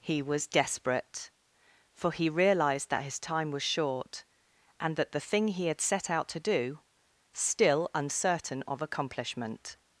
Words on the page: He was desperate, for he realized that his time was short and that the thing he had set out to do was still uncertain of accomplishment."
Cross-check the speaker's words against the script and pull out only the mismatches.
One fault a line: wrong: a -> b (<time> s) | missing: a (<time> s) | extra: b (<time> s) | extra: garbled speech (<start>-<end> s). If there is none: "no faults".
missing: was (6.8 s)